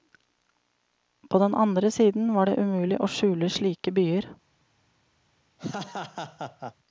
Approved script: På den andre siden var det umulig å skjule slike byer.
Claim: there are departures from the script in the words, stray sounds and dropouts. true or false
true